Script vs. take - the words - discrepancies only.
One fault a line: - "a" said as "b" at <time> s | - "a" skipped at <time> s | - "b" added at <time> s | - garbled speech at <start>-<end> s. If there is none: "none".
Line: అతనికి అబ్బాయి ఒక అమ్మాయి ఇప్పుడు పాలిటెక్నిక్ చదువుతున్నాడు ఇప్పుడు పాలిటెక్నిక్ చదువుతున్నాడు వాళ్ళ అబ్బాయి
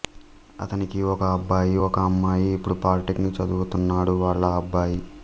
- "ఒక" added at 1.1 s
- "ఇప్పుడు పాలిటెక్నిక్ చదువుతున్నాడు" skipped at 4.2 s